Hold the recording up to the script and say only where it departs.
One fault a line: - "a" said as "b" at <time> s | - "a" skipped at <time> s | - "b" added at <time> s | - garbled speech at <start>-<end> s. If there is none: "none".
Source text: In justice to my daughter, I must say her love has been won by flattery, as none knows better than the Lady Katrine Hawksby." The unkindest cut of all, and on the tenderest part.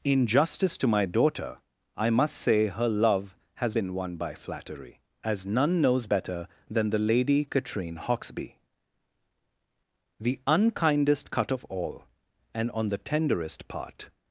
none